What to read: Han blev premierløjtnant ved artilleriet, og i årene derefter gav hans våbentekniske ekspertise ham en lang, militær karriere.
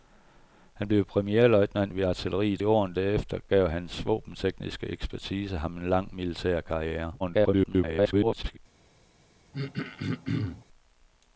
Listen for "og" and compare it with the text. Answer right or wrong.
wrong